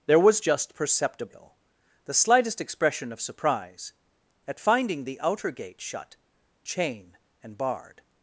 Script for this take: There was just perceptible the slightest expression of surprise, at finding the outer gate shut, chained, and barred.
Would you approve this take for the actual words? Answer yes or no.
no